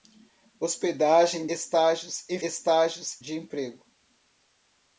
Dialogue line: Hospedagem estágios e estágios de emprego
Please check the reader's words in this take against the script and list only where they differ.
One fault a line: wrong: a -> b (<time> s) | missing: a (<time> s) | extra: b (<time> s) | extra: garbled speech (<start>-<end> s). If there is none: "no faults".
no faults